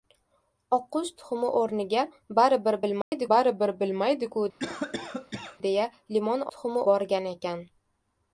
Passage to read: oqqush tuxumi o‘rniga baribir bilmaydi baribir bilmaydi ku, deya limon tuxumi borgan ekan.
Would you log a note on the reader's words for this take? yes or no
no